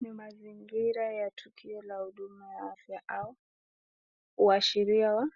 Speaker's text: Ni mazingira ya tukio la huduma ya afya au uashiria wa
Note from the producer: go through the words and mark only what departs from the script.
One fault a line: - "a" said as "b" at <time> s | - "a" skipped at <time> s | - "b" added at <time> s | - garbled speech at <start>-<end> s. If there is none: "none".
none